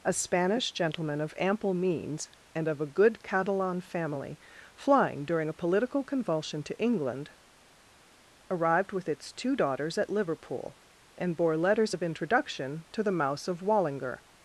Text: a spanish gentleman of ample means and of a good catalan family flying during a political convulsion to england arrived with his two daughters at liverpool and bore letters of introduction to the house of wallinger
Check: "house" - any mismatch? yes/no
yes